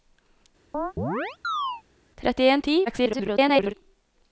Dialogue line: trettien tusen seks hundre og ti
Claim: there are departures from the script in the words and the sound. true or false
true